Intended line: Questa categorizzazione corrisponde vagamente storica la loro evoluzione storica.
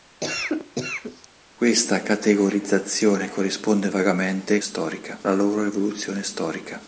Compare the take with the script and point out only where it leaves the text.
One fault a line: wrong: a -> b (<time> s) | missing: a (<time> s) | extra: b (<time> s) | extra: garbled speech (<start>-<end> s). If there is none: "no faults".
no faults